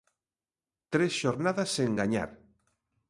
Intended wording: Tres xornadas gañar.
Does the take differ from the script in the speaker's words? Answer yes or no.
yes